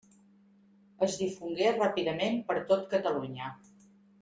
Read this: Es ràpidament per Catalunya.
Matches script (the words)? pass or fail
fail